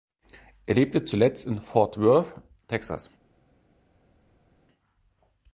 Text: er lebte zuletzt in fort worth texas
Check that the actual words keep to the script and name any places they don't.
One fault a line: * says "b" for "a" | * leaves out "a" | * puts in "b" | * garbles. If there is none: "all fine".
all fine